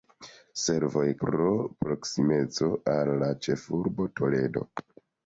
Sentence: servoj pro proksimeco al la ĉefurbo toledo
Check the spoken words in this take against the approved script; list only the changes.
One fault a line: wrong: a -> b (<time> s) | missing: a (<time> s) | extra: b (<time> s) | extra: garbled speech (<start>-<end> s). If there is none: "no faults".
no faults